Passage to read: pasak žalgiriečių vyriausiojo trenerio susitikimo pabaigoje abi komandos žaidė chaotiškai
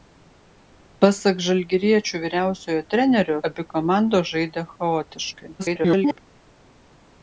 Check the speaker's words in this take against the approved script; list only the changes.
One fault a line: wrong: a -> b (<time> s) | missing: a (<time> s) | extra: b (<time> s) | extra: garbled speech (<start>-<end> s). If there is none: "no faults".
missing: susitikimo pabaigoje (3.4 s)
extra: garbled speech (5.6-6.2 s)